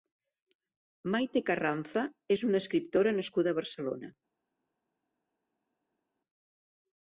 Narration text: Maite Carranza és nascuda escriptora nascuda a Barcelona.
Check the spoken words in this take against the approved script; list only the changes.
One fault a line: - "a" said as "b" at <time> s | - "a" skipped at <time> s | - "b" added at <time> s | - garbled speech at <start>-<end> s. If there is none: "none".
- "nascuda" said as "una" at 2.5 s